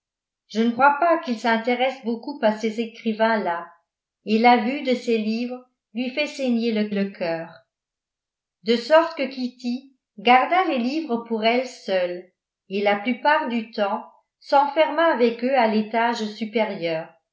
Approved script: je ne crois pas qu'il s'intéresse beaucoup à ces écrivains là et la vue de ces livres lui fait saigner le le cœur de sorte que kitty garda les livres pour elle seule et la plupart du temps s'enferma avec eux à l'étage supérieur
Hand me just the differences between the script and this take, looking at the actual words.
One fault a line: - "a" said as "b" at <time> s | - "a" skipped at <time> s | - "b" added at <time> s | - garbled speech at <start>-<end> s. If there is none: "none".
none